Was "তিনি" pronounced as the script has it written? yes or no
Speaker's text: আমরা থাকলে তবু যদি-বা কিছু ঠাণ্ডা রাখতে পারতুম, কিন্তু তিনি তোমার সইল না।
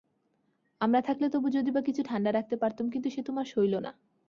no